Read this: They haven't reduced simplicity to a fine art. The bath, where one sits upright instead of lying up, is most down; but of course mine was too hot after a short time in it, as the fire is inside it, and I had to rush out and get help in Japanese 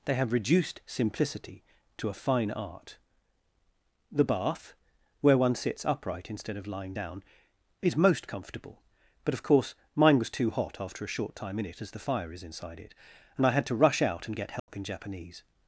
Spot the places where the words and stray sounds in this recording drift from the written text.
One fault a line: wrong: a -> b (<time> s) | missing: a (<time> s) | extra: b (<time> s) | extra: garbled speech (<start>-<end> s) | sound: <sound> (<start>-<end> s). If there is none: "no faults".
wrong: haven't -> have (0.1 s)
wrong: up -> down (6.9 s)
wrong: down -> comfortable (8.3 s)
sound: dropout (14.6-14.7 s)